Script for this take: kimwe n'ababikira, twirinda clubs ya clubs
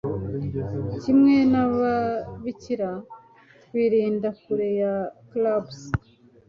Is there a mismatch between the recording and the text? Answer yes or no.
yes